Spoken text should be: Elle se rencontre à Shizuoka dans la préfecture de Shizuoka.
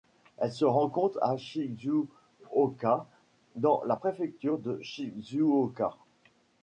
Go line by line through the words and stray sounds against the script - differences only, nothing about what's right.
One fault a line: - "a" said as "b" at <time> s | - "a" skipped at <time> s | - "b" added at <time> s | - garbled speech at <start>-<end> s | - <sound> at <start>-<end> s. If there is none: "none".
none